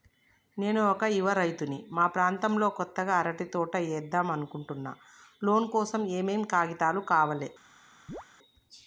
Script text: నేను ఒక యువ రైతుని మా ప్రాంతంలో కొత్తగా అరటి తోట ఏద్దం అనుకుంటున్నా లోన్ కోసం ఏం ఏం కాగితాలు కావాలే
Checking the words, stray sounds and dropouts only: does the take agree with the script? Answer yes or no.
no